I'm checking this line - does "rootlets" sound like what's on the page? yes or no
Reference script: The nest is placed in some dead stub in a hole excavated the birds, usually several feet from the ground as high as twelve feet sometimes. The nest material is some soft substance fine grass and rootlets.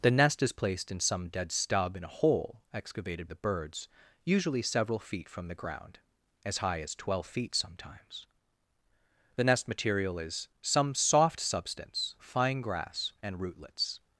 yes